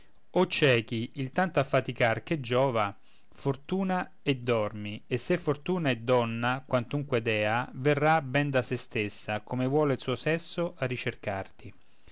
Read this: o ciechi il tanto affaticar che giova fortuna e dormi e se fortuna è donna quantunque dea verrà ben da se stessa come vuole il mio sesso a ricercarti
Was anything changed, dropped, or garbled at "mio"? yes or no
yes